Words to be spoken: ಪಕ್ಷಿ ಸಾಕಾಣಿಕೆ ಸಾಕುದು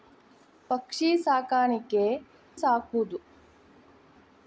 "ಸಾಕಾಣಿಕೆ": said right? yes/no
yes